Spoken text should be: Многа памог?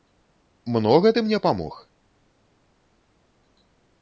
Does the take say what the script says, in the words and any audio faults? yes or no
no